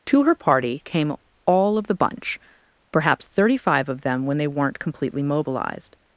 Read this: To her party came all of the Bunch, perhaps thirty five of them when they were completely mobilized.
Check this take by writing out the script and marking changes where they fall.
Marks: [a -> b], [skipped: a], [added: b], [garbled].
To her party came all of the Bunch, perhaps thirty five of them when they [were -> weren't] completely mobilized.